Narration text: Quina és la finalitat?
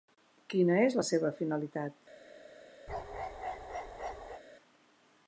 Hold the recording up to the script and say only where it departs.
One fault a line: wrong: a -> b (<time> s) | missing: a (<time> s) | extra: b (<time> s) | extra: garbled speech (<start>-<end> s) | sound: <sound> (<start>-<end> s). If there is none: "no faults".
extra: seva (1.1 s)
sound: bark (2.9-4.4 s)